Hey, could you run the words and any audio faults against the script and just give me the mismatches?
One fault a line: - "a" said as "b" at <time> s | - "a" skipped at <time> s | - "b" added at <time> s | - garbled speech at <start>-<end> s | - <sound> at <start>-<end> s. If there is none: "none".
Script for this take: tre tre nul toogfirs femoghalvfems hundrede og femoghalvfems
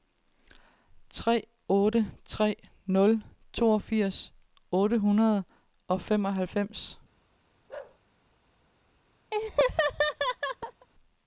- "otte" added at 1.7 s
- "femoghalvfems" said as "otte" at 4.7 s
- bark at 7.7-8.0 s
- laugh at 9.3-10.9 s